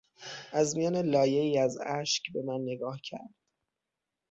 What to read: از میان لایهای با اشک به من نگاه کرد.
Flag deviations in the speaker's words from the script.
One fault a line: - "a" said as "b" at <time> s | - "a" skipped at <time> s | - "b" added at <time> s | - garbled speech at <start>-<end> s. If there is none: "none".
- "با" said as "از" at 1.6 s